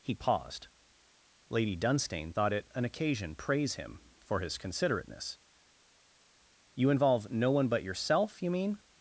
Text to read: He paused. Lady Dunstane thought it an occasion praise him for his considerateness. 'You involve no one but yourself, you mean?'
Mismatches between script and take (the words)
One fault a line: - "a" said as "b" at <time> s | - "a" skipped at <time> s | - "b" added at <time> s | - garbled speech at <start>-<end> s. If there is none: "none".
none